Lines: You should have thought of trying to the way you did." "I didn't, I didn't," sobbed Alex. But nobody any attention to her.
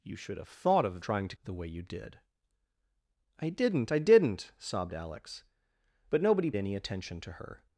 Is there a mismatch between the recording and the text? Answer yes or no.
no